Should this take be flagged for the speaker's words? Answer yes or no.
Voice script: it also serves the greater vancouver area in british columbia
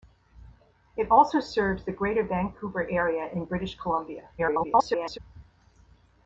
yes